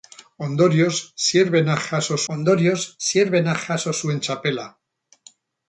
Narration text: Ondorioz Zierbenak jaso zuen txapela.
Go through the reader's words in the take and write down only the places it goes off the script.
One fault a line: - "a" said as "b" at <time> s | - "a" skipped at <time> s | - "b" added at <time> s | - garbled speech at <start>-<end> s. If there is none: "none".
- "ondorioz Zierbenak jaso" added at 2.3 s